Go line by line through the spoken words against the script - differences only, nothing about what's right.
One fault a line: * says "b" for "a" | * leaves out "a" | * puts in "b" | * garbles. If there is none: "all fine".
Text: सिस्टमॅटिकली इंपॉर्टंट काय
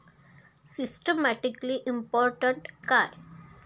all fine